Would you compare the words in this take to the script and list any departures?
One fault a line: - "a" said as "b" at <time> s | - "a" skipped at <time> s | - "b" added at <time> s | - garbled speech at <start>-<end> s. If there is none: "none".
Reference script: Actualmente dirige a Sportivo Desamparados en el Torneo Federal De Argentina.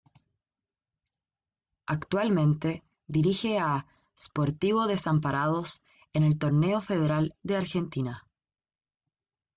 none